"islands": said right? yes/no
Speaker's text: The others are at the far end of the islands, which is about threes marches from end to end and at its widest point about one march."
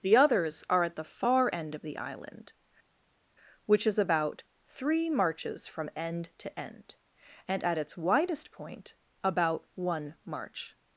no